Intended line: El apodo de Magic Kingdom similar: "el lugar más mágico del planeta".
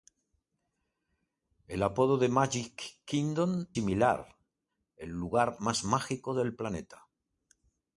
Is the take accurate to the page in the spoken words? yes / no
yes